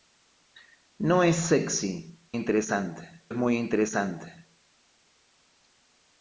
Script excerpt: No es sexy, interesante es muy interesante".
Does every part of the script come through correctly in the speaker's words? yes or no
yes